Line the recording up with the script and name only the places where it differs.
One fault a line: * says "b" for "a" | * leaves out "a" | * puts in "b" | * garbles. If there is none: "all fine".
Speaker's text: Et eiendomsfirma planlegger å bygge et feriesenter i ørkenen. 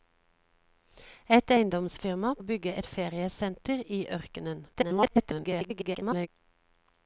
* leaves out "planlegger"
* garbles